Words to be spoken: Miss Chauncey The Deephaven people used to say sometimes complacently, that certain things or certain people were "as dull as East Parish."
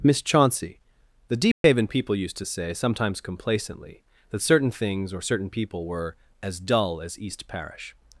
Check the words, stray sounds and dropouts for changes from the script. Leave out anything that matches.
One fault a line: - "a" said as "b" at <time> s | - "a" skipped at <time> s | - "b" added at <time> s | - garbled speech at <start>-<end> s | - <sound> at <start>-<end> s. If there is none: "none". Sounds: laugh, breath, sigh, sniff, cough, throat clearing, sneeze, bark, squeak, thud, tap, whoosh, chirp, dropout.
- dropout at 1.5-1.6 s